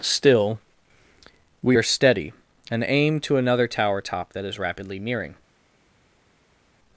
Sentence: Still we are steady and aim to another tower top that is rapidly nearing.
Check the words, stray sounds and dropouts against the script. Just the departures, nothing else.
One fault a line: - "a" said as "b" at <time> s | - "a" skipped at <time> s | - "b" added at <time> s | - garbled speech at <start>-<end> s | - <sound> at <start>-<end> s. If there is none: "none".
none